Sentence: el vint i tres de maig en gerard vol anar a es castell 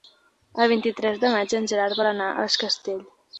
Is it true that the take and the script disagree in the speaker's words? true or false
false